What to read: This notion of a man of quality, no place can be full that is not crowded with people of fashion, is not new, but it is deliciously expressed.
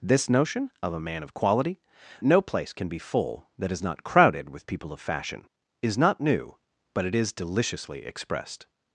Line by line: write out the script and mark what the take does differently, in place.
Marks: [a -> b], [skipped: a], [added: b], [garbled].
This notion of a man of quality, no place can be full that is not crowded with people of fashion, is not new, but it is deliciously expressed.